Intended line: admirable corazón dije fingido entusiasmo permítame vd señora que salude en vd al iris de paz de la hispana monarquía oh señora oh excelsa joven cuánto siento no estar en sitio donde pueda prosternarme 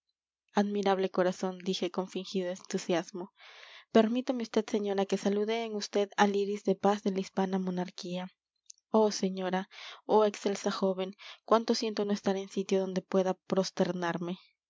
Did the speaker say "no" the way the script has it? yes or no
yes